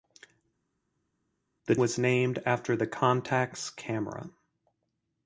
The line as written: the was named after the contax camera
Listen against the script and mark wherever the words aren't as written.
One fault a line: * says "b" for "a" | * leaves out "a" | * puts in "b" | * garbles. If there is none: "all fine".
all fine